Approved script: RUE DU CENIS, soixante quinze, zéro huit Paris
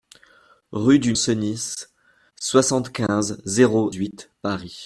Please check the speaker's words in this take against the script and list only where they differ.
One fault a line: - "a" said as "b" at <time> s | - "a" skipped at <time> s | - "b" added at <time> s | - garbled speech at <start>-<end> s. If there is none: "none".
none